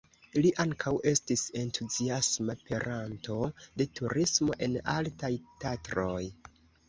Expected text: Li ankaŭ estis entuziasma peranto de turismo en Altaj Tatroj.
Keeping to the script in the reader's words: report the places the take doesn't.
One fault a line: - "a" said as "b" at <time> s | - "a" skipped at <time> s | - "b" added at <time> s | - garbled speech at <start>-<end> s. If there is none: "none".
none